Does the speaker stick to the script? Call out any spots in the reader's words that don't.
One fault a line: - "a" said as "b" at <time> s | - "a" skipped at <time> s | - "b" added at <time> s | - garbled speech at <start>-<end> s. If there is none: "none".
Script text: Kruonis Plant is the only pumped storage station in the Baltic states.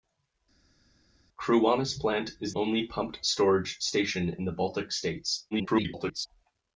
- "the" skipped at 2.5 s
- garbled speech at 5.5-6.3 s